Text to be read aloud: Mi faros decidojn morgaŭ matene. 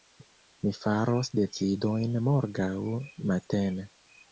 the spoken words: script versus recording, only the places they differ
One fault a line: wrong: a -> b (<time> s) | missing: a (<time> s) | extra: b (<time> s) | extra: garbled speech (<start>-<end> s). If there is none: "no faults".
no faults